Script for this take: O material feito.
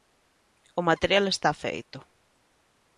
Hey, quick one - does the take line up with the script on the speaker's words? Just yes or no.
no